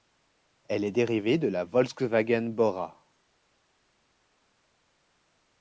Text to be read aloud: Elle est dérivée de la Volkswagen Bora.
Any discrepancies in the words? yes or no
no